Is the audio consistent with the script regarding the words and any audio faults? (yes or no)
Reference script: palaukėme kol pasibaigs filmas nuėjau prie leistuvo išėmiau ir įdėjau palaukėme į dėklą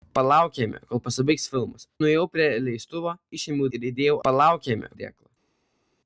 yes